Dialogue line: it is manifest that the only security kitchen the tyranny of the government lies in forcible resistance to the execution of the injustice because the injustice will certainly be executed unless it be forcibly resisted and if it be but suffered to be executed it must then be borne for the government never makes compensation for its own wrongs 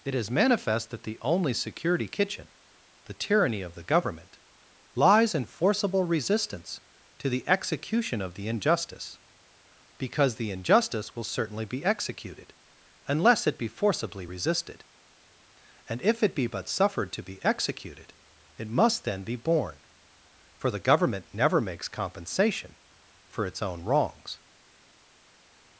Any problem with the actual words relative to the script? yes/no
no